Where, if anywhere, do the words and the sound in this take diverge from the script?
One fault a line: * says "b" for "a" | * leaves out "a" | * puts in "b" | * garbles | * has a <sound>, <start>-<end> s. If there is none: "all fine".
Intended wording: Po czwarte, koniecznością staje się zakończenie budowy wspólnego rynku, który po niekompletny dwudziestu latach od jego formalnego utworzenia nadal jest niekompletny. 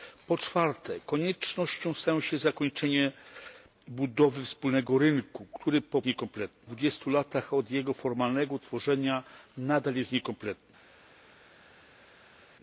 all fine